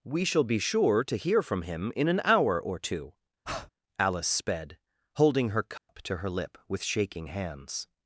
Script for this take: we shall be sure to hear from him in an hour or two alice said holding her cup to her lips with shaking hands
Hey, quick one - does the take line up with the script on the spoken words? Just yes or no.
no